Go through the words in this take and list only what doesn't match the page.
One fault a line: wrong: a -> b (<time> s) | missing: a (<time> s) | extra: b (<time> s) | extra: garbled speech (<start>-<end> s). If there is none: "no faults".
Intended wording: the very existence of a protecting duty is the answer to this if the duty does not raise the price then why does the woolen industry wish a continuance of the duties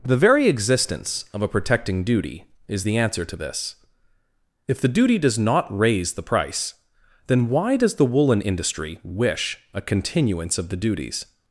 no faults